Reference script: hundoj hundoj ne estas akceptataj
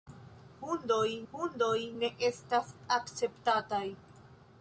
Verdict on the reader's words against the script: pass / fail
pass